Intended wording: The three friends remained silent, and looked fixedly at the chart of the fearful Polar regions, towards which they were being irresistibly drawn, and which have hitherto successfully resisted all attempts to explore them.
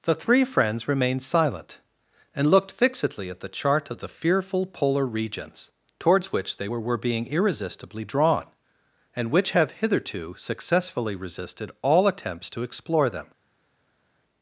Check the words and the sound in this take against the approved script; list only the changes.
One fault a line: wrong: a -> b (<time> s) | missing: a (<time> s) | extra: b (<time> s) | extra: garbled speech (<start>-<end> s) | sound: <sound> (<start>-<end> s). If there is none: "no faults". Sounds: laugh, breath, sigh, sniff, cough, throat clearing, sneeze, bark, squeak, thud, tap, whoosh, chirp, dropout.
extra: were (6.8 s)